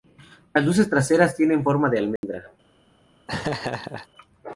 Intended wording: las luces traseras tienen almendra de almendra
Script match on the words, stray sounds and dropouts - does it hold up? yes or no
no